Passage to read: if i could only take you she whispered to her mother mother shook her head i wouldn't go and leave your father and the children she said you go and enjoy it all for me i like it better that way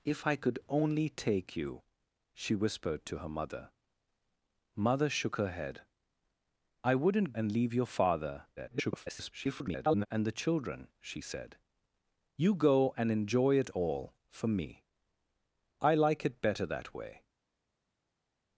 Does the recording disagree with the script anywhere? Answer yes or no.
yes